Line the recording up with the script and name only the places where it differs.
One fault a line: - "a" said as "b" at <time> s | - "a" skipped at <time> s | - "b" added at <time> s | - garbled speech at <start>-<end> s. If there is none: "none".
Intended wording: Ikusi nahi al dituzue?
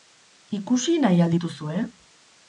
none